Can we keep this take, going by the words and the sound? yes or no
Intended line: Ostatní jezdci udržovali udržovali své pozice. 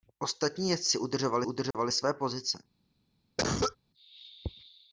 no